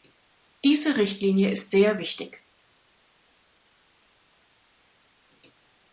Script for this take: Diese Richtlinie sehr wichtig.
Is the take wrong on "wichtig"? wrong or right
right